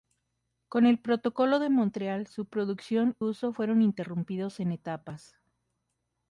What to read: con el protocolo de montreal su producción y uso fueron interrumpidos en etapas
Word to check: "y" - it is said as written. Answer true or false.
false